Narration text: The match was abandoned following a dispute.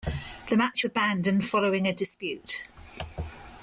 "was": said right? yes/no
no